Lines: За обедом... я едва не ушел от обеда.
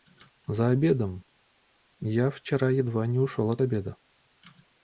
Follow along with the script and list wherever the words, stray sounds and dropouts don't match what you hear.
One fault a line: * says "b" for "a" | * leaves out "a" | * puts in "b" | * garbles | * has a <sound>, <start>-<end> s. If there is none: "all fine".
* puts in "вчера"